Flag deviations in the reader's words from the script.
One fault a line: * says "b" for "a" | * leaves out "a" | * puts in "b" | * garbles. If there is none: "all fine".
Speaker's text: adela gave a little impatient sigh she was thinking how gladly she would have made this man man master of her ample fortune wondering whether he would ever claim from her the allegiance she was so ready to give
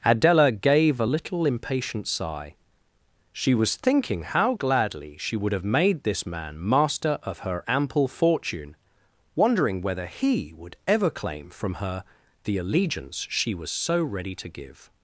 * leaves out "man"